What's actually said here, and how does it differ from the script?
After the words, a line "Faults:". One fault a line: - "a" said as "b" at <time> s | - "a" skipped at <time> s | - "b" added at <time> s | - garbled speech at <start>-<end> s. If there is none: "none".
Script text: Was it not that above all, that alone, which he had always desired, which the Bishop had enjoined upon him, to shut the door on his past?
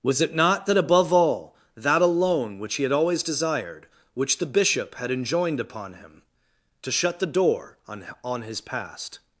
Was it not that above all, that alone, which he had always desired, which the Bishop had enjoined upon him, to shut the door on on his past?
Faults:
- "on" added at 8.2 s